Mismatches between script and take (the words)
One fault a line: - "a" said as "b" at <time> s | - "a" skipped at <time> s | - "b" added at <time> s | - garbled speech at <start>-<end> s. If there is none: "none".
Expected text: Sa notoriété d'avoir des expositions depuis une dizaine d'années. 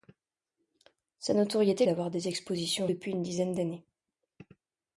none